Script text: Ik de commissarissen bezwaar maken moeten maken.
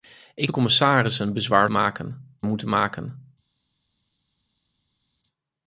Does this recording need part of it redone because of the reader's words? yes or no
no